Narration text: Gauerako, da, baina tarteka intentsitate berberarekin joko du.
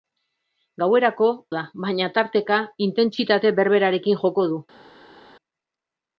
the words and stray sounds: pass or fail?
pass